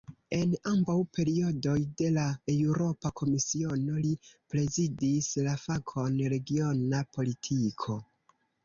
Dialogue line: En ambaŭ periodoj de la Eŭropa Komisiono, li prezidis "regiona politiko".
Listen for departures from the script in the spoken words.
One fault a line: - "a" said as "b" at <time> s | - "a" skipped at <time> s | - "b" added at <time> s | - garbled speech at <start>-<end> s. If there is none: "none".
- "la fakon" added at 5.5 s